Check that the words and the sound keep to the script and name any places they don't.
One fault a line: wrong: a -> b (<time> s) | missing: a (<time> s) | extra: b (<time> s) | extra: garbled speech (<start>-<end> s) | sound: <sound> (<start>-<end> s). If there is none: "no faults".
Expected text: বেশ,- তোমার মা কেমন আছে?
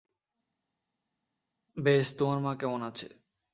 no faults